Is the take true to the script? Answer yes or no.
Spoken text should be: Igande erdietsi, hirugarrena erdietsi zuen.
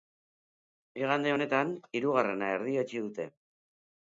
no